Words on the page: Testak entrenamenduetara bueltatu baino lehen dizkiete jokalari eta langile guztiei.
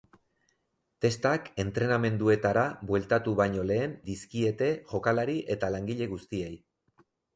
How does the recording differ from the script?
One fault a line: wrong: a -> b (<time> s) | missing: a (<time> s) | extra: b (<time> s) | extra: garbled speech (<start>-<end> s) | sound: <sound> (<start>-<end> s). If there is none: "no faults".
no faults